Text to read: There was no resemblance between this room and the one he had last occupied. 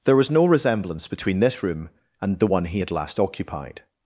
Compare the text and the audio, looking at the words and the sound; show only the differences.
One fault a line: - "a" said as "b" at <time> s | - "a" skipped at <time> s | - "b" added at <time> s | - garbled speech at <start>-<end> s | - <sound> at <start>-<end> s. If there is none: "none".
none